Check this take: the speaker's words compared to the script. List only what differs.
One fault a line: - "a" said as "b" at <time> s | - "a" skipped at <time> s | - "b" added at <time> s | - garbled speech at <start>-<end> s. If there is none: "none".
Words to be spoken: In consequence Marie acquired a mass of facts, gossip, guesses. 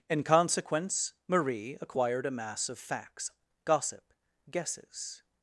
none